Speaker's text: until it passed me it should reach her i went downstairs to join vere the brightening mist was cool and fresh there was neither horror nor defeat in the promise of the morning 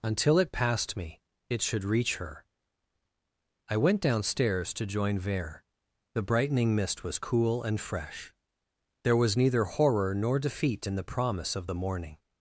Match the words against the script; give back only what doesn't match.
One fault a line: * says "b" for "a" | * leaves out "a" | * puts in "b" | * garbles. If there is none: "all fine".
all fine